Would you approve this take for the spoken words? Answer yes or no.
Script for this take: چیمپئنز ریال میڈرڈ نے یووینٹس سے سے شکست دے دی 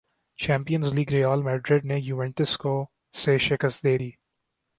no